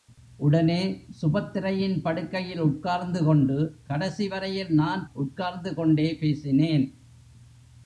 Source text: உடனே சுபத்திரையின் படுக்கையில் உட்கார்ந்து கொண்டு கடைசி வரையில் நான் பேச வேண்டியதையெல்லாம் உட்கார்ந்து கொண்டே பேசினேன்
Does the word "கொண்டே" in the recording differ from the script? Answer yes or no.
no